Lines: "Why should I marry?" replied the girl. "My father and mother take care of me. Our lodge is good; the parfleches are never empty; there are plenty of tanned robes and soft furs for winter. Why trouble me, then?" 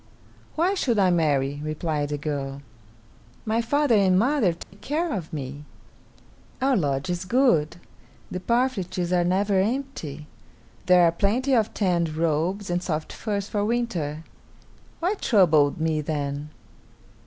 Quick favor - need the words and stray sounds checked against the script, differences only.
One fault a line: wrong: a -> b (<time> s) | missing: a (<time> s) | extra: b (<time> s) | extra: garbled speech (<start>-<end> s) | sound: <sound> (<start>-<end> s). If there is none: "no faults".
sound: dropout (4.6-4.7 s)